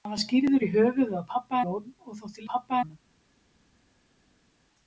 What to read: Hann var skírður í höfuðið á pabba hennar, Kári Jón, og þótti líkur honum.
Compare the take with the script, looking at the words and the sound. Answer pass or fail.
fail